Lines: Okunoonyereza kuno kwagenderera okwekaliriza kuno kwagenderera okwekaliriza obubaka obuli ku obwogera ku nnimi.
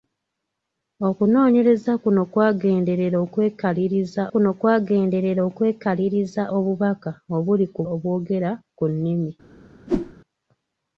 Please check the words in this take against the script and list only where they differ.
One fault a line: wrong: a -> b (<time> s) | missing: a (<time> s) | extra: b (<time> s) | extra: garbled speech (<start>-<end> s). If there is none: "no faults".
no faults